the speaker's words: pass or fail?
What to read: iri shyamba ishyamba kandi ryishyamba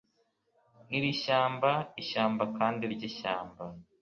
pass